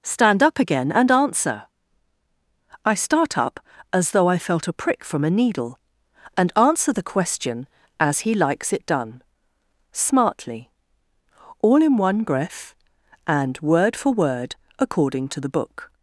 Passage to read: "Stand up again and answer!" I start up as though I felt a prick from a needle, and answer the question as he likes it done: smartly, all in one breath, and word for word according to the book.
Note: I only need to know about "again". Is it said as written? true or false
true